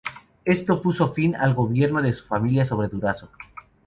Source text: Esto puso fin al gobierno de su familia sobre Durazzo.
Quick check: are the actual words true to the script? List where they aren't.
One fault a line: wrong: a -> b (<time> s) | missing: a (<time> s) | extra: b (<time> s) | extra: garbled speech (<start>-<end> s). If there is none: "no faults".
no faults